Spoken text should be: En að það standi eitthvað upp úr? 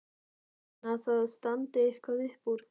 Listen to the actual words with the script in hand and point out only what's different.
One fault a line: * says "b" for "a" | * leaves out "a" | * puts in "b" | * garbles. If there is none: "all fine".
all fine